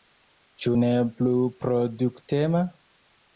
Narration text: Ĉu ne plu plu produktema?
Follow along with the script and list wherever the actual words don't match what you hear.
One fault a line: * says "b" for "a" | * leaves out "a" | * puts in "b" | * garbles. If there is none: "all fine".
* leaves out "plu"